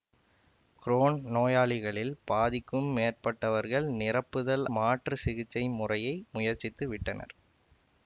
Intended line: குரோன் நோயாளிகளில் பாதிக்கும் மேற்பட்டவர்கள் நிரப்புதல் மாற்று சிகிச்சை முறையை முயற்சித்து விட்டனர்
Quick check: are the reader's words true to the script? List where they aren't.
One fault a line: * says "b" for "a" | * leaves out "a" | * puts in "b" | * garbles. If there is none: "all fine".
all fine